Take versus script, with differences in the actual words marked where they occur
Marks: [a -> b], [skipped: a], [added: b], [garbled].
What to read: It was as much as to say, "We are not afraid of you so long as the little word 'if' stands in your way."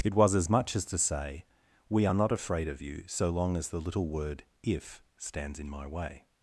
It was as much as to say, "We are not afraid of you so long as the little word 'if' stands in [your -> my] way."